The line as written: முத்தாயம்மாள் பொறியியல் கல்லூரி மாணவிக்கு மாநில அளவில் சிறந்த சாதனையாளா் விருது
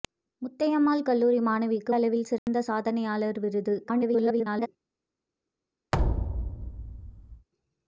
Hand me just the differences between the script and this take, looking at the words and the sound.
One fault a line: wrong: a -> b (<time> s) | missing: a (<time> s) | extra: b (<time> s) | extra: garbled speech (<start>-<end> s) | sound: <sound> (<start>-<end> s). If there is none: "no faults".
missing: பொறியியல் (1.0 s)
missing: மாநில (1.9 s)
sound: dropout (2.4-2.5 s)
extra: garbled speech (3.8-4.7 s)
sound: thud (5.9-7.5 s)